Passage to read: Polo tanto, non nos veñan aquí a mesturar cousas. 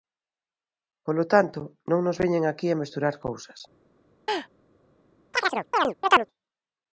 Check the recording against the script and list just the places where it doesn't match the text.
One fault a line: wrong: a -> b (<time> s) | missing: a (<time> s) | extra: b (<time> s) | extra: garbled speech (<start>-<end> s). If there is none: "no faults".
no faults